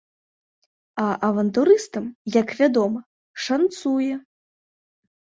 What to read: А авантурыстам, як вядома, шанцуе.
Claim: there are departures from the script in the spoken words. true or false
false